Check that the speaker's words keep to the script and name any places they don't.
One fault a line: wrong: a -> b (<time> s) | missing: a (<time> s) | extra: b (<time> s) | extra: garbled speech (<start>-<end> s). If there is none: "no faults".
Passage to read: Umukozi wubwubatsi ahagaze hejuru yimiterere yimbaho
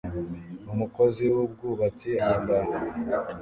missing: ahagaze hejuru yimiterere (2.1 s)